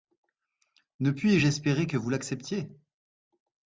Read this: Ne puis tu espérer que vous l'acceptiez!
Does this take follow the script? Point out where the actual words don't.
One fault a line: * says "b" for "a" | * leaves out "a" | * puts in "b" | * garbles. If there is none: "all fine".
* says "je" for "tu"